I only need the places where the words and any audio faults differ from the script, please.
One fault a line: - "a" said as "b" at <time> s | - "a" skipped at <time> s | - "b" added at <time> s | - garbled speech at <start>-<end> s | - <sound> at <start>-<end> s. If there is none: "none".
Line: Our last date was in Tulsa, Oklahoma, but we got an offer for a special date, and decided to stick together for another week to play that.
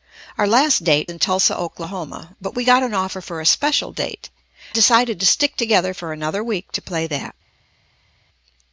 - "was" skipped at 1.1 s
- "and" skipped at 4.3 s